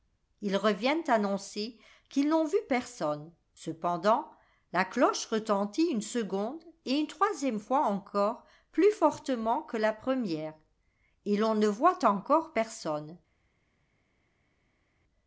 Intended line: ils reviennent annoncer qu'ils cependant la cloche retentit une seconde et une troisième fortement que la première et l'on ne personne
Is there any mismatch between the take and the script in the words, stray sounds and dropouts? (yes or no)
yes